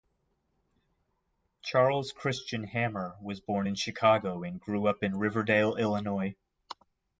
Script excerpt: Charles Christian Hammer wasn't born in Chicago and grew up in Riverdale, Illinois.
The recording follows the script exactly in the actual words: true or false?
false